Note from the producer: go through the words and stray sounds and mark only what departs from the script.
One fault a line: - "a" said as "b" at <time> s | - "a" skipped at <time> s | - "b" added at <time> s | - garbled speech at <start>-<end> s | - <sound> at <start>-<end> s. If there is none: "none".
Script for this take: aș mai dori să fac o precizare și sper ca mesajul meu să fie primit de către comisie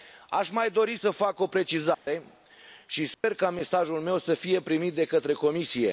- dropout at 1.9-2.1 s
- dropout at 3.1-3.2 s